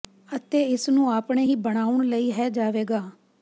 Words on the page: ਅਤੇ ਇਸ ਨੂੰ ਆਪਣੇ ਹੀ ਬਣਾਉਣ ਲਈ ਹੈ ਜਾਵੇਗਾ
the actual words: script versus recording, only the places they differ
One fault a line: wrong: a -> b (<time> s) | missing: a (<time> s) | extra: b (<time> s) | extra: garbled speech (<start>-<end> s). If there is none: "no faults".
no faults